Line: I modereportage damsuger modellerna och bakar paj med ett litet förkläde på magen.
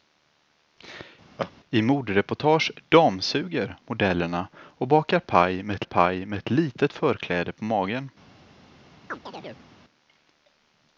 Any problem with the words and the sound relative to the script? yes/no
yes